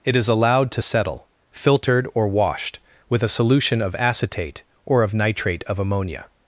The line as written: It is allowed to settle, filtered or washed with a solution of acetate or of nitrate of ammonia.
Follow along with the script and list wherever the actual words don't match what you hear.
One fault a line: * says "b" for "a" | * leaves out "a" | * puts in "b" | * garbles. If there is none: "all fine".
all fine